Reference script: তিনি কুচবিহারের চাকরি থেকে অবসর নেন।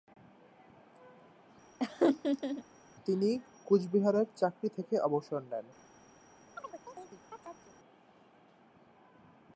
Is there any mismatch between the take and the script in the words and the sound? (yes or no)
yes